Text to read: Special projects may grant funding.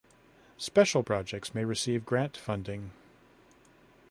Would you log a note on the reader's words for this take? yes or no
yes